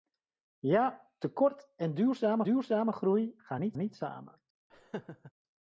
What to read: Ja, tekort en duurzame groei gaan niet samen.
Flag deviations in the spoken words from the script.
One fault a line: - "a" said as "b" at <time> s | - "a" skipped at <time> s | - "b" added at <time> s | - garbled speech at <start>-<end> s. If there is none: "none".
- "duurzame" added at 2.4 s
- "niet" added at 3.8 s